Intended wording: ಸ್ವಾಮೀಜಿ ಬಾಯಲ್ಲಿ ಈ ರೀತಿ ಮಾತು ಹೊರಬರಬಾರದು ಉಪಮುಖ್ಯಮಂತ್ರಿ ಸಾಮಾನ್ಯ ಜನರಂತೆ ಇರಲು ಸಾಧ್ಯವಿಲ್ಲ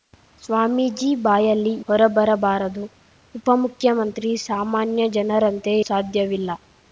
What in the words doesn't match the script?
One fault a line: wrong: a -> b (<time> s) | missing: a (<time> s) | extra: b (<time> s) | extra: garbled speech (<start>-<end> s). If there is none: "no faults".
missing: ಈ ರೀತಿ ಮಾತು (1.7 s)
missing: ಇರಲು (5.7 s)